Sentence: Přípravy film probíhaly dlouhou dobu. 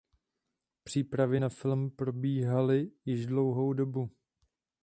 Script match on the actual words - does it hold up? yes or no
no